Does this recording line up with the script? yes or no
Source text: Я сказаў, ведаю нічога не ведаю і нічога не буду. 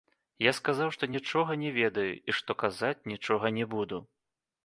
no